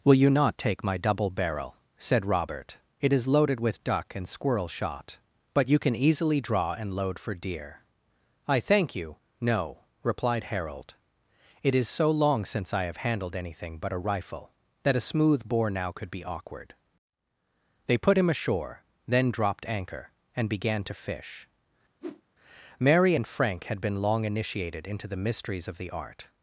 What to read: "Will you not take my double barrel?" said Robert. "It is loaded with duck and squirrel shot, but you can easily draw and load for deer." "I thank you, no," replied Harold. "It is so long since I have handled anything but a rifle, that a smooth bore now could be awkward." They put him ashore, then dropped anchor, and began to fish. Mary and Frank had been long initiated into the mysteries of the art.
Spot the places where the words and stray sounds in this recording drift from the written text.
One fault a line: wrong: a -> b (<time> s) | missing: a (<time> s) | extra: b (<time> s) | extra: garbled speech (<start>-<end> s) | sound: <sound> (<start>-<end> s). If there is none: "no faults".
sound: whoosh (22.0-22.2 s)